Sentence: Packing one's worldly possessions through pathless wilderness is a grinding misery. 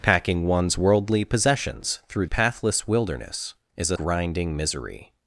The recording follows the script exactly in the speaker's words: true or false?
true